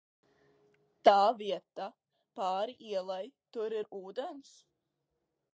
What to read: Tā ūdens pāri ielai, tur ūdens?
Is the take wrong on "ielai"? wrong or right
right